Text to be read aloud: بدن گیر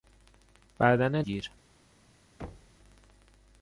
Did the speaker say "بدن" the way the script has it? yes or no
yes